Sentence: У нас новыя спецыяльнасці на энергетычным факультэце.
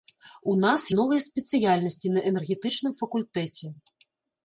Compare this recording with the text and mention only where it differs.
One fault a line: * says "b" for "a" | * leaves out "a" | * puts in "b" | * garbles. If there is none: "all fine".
all fine